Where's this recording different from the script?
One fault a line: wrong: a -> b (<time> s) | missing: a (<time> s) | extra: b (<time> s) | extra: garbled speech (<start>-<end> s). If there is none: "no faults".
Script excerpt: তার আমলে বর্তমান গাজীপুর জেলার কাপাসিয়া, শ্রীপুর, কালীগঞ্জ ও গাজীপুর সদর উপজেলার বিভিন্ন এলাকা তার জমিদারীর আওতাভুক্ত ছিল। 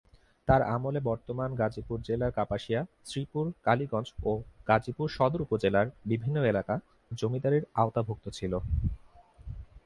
missing: তার (6.7 s)